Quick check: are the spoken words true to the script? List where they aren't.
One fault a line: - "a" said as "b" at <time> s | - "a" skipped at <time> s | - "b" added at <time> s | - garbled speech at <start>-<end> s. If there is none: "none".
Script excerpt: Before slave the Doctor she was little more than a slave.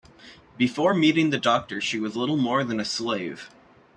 - "slave" said as "meeting" at 0.9 s